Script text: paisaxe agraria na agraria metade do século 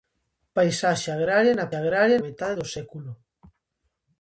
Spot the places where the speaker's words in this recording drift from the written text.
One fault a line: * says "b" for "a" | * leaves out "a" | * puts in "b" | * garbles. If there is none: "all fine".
all fine